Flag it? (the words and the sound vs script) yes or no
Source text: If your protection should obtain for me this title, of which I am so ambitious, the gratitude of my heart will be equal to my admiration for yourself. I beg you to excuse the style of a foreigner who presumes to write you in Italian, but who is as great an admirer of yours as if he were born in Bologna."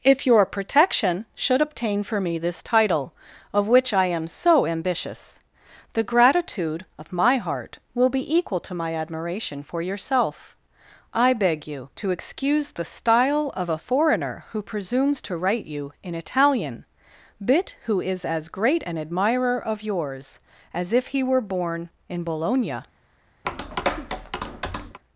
yes